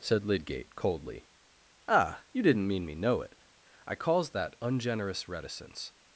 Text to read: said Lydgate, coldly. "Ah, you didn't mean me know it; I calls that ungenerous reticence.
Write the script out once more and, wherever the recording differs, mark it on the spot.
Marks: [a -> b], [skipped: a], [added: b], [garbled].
said Lydgate, coldly. "Ah, you didn't mean me know it; I calls that ungenerous reticence.